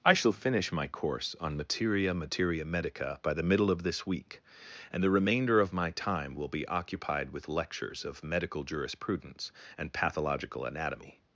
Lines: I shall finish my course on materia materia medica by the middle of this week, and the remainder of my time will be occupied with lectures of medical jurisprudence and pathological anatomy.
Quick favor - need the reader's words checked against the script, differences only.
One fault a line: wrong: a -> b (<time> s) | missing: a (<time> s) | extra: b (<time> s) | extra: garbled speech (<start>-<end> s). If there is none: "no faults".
no faults